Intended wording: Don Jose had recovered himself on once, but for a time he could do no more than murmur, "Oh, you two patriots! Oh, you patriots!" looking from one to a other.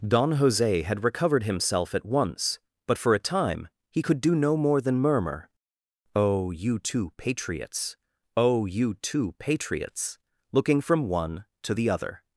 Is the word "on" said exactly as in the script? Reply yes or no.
no